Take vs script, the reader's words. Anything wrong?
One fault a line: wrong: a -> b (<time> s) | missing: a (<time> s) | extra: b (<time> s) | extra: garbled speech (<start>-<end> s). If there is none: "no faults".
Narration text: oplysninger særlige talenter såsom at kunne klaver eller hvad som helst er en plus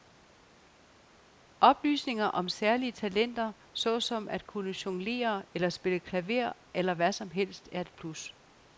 extra: om (2.2 s)
extra: jonglere eller spille (4.8 s)
wrong: en -> et (7.8 s)